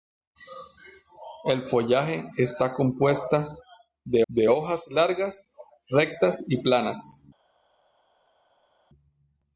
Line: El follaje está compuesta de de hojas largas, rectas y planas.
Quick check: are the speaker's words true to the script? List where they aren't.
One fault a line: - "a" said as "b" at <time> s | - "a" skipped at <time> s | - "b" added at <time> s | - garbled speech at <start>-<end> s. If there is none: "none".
none